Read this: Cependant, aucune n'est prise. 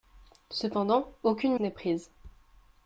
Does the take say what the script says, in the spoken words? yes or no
yes